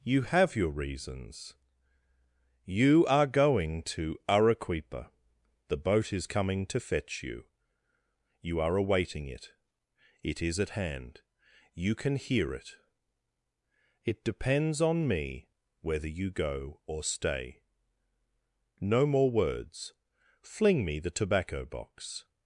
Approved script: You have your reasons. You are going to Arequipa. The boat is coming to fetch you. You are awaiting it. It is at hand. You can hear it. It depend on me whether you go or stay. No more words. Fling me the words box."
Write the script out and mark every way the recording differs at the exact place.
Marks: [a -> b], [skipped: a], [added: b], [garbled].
You have your reasons. You are going to Arequipa. The boat is coming to fetch you. You are awaiting it. It is at hand. You can hear it. It [depend -> depends] on me whether you go or stay. No more words. Fling me the [words -> tobacco] box."